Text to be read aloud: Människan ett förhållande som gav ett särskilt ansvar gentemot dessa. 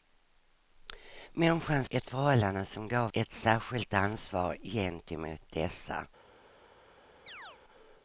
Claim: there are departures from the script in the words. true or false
false